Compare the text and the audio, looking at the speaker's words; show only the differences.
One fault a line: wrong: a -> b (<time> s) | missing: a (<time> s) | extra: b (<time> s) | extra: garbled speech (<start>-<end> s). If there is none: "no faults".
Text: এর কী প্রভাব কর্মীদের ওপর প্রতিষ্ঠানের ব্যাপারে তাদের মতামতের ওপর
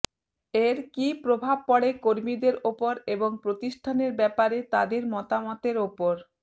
extra: পড়ে (1.7 s)
extra: এবং (3.1 s)